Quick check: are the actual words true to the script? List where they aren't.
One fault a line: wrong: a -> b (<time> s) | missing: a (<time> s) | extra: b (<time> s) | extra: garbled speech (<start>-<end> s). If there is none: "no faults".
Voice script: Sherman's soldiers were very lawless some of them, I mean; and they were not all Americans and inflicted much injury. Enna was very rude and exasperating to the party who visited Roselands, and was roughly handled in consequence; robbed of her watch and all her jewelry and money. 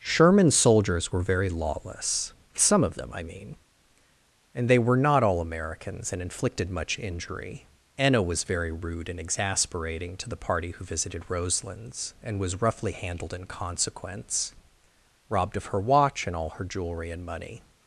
no faults